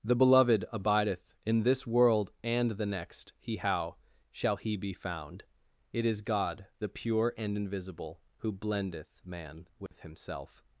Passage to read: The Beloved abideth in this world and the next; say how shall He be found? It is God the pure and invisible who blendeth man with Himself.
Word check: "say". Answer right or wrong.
wrong